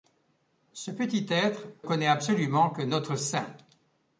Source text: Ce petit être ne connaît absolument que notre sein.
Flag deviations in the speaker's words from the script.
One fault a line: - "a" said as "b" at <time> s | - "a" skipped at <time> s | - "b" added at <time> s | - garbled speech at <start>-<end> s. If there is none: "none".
- "ne" skipped at 1.7 s